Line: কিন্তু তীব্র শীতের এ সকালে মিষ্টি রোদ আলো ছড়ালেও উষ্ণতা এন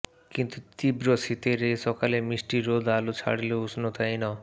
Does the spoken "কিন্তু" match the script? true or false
true